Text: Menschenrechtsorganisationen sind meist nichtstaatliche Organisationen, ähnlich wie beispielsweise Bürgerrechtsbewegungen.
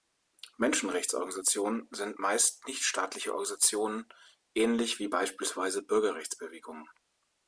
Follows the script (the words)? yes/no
yes